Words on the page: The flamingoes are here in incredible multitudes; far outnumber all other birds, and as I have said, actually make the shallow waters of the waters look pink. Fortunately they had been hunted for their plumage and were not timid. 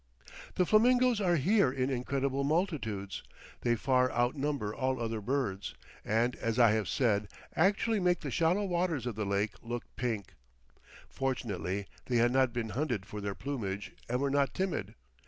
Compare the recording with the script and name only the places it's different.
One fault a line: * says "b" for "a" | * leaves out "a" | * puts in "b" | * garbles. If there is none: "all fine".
* puts in "they"
* says "lake" for "waters"
* puts in "not"